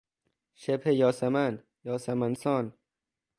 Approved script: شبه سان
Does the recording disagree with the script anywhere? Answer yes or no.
yes